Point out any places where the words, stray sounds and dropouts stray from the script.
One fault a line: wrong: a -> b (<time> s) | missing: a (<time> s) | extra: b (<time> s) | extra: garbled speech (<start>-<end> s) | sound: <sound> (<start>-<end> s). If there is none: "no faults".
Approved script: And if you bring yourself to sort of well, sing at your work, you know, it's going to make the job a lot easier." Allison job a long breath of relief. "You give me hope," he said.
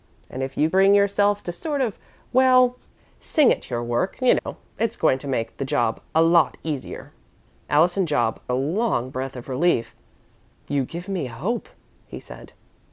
sound: dropout (4.4-4.5 s)